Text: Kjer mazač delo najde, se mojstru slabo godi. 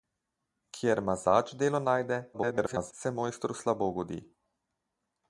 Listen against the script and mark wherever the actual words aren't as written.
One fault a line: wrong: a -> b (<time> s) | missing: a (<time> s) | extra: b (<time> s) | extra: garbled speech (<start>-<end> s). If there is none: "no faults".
extra: garbled speech (2.3-2.9 s)